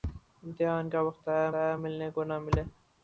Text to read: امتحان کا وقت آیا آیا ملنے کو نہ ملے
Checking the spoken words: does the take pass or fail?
pass